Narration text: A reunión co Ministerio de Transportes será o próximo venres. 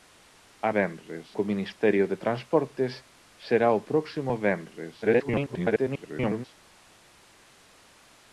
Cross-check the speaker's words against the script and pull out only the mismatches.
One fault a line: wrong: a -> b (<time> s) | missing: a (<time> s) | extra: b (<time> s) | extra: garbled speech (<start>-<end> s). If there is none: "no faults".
wrong: reunión -> venres (0.8 s)
extra: garbled speech (5.0-6.4 s)